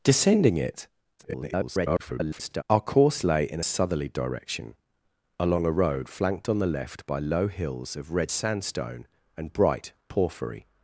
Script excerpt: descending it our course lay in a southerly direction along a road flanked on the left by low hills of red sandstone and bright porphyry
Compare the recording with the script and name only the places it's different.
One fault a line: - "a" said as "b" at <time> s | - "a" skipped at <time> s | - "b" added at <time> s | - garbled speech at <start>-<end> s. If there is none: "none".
- garbled speech at 1.2-2.6 s
- "a" skipped at 3.6 s